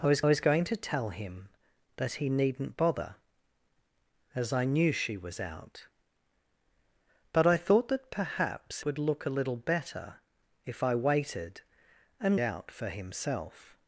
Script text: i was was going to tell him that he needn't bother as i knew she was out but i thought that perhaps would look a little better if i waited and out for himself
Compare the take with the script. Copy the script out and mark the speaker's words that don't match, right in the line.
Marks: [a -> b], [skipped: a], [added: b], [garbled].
i was was going to tell him that he needn't bother as i knew she was out but i thought that perhaps would look a little better if i waited and out for himself